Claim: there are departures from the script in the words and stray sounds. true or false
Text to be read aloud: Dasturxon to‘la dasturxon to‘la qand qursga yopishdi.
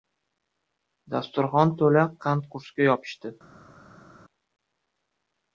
true